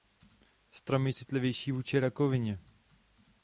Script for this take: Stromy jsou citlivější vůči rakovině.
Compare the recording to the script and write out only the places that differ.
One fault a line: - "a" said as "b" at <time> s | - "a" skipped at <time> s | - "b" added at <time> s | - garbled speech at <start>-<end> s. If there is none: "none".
- "jsou" skipped at 1.1 s